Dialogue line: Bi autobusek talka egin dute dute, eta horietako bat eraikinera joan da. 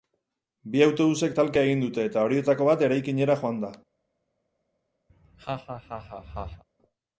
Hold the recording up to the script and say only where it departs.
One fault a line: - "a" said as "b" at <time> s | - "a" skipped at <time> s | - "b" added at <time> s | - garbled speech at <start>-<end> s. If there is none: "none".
- "dute" skipped at 2.1 s